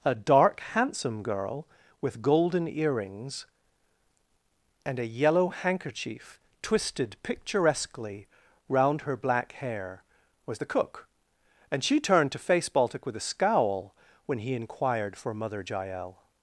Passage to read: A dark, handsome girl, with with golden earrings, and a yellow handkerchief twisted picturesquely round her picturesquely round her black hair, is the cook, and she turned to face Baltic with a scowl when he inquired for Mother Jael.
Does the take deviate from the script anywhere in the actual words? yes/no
yes